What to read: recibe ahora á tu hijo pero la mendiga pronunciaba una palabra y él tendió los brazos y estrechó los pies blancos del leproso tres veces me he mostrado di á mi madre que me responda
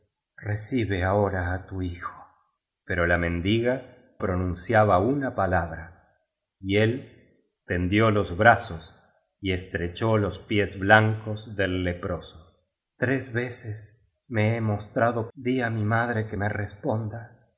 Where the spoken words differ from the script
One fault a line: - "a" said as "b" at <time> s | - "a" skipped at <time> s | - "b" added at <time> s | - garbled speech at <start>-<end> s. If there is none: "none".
none